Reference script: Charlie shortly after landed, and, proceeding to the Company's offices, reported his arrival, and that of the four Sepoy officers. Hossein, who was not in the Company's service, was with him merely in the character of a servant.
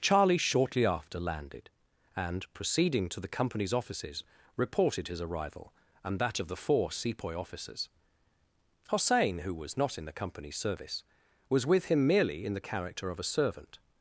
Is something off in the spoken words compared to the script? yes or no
no